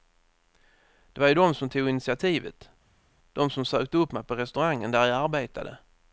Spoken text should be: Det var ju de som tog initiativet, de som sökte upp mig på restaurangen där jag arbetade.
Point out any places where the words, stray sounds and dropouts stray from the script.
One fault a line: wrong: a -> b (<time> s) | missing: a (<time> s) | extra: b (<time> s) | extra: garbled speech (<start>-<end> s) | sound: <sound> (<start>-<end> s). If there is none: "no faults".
no faults